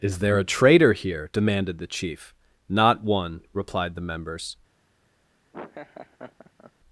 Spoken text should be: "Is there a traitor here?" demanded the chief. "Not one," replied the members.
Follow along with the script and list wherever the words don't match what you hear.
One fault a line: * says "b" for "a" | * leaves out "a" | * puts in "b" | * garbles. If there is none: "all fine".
all fine